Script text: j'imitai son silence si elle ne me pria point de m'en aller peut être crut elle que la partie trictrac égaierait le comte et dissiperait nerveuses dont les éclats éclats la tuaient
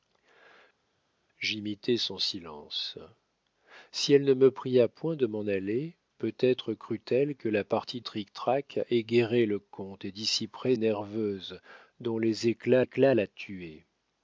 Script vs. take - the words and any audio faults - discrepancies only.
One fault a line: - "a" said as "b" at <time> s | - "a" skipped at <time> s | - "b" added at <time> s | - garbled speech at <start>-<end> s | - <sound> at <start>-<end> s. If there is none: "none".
none